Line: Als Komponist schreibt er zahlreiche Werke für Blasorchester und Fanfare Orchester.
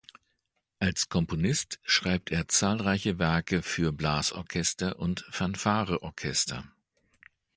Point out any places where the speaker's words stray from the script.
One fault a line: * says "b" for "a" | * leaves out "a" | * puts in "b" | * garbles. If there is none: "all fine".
all fine